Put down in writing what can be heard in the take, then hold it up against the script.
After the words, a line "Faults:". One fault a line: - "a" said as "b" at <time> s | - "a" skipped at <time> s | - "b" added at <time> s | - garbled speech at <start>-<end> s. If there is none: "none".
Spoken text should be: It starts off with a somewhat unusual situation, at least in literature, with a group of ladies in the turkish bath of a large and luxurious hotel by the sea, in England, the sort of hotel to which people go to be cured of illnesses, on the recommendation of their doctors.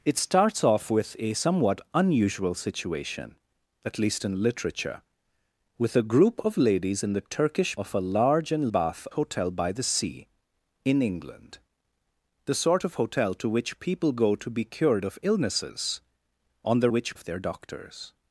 It starts off with a somewhat unusual situation, at least in literature, with a group of ladies in the turkish of a large and bath hotel by the sea, in England, the sort of hotel to which people go to be cured of illnesses, on the which of their doctors.
Faults:
- "bath" skipped at 7.8 s
- "luxurious" said as "bath" at 8.6 s
- "recommendation" said as "which" at 16.9 s